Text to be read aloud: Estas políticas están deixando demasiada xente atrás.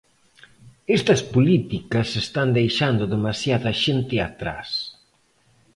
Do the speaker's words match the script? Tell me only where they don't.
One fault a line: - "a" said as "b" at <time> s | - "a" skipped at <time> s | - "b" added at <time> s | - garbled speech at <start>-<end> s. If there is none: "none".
none